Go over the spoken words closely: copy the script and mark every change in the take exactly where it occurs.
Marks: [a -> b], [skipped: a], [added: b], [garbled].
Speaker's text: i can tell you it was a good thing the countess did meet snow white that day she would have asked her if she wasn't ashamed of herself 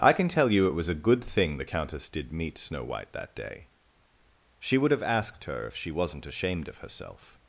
i can tell you it was a good thing the countess did meet snow white that day she would have asked her if she wasn't ashamed of herself